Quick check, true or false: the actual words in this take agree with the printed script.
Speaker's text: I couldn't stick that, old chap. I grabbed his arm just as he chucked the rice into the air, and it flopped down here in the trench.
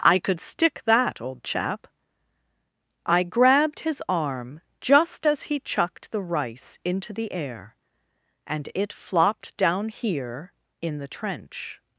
false